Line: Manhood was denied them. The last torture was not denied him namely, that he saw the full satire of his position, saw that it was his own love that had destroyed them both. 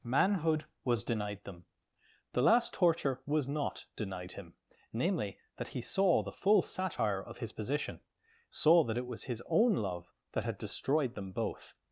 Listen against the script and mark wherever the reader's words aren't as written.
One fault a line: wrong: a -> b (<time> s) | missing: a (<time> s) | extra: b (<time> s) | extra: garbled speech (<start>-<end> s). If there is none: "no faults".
no faults